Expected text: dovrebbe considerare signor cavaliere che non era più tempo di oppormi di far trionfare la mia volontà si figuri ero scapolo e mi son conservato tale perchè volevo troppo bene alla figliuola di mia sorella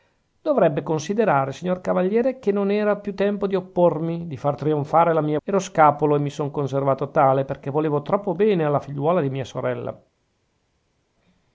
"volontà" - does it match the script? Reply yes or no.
no